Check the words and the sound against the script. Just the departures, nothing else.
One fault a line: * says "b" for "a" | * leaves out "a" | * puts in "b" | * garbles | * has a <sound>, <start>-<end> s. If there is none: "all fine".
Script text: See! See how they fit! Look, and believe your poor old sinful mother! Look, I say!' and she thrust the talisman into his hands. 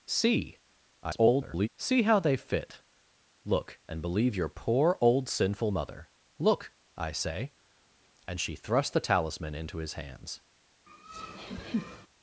* garbles
* has a laugh, 10.9-12.1 s